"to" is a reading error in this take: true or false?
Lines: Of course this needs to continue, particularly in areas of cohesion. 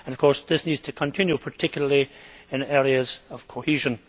false